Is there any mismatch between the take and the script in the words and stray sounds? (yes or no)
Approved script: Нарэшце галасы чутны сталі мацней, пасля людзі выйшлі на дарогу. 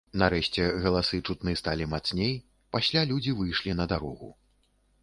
no